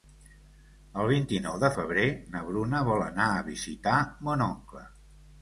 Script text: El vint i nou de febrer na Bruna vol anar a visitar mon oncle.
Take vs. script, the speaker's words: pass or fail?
pass